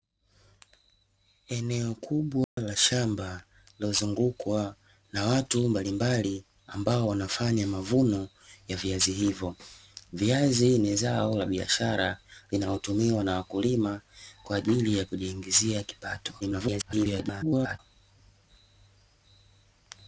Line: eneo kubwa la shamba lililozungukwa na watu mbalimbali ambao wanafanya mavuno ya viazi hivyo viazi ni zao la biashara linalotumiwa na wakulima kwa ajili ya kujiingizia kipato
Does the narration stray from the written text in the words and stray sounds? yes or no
yes